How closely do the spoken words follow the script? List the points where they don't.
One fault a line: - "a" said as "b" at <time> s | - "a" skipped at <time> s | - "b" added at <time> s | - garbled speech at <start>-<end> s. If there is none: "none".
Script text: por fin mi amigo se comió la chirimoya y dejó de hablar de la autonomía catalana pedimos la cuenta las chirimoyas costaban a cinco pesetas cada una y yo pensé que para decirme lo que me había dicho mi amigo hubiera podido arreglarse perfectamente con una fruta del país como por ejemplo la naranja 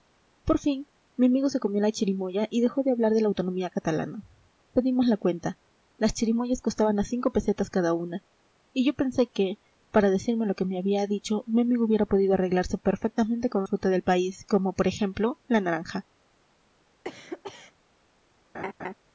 - "una" skipped at 13.6 s